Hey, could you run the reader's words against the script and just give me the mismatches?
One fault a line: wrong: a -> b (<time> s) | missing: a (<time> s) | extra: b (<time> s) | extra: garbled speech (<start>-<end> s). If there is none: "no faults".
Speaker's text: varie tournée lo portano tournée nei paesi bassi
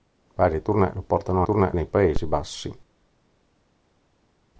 no faults